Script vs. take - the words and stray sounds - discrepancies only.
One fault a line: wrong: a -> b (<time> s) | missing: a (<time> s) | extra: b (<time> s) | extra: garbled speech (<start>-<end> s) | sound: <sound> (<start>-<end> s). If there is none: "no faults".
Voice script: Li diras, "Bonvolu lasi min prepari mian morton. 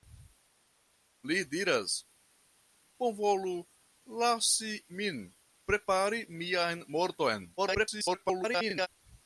extra: garbled speech (7.6-8.9 s)